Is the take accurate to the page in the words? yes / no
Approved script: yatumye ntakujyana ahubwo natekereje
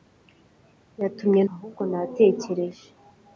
no